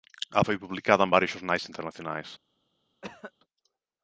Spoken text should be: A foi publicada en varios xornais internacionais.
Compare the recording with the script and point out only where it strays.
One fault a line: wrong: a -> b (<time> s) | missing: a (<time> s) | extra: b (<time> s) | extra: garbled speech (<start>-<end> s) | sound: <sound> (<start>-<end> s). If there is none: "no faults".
sound: cough (3.0-3.3 s)